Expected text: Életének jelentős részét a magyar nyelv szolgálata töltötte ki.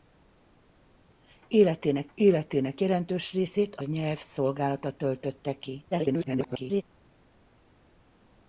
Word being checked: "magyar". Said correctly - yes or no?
no